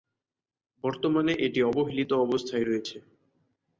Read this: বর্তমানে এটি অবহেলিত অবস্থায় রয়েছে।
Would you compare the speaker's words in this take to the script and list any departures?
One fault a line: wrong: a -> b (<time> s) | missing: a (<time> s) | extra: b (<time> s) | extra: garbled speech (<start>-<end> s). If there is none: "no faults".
no faults